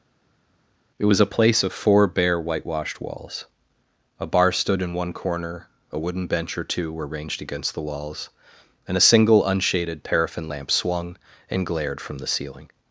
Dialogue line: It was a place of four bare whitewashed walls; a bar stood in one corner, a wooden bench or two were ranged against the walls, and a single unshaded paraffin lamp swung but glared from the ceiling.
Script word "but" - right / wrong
wrong